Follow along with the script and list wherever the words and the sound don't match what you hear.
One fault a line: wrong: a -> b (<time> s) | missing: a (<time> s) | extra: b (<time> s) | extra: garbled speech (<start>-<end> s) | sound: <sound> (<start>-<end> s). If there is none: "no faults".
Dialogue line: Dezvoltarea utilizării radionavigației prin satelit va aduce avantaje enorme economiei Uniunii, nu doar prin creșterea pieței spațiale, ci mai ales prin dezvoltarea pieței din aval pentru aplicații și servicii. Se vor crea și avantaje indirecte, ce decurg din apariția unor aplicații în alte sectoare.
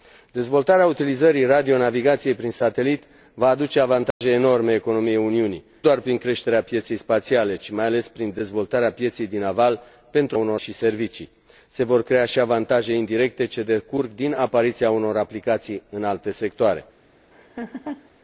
sound: dropout (4.1-4.2 s)
missing: nu (5.6 s)
wrong: aplicații -> unor (10.3 s)
sound: laugh (17.3-18.1 s)